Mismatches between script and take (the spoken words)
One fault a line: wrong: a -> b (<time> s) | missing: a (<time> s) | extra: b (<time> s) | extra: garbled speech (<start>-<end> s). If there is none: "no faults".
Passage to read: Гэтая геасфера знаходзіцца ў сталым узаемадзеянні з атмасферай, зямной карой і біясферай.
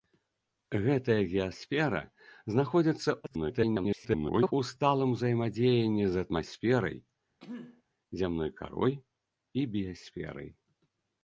extra: garbled speech (3.2-4.5 s)